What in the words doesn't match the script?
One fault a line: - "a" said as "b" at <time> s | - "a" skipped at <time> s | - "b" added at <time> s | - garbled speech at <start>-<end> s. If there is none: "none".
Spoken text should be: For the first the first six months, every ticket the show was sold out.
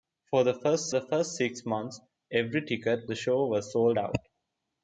none